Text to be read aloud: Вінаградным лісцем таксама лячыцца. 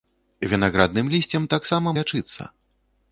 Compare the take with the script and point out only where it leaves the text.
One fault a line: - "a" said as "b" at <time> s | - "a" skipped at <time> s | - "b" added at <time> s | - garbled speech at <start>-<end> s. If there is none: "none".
none